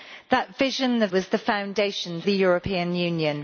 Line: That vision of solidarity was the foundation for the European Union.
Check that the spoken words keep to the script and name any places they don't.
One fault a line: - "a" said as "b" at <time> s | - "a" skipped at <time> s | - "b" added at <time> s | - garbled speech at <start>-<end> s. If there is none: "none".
- "solidarity" skipped at 1.1 s
- "for" skipped at 2.2 s